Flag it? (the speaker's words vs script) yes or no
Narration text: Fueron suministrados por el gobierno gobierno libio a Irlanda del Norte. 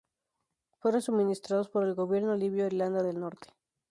yes